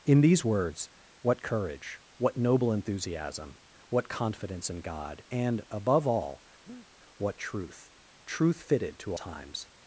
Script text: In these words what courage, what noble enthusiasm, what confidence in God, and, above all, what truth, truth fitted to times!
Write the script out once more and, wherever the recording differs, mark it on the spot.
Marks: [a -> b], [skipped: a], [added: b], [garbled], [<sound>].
In these words what courage, what noble enthusiasm, what confidence in God, and, above all, [breath] what truth, truth fitted to times!